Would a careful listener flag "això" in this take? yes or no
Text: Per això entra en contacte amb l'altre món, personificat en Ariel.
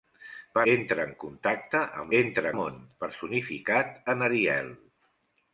yes